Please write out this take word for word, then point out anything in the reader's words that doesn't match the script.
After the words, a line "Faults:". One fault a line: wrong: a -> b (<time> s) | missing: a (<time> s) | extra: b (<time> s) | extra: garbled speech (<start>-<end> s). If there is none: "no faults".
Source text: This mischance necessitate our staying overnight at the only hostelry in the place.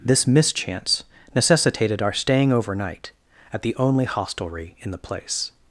This mischance necessitated our staying overnight at the only hostelry in the place.
Faults:
wrong: necessitate -> necessitated (1.4 s)